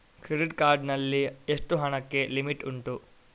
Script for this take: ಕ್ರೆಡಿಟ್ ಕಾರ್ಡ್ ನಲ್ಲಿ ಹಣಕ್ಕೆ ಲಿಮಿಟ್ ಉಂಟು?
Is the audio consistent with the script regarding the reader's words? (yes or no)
no